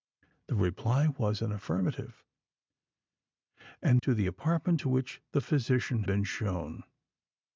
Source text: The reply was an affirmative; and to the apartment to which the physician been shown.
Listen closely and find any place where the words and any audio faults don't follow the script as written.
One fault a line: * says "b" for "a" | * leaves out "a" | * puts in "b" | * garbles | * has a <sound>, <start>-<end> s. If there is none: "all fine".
all fine